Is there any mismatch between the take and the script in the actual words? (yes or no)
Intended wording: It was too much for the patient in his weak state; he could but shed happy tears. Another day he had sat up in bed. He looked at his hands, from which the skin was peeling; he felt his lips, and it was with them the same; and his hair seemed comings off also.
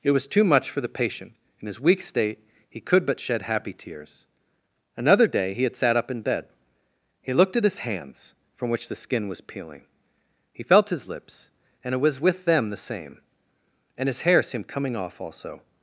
yes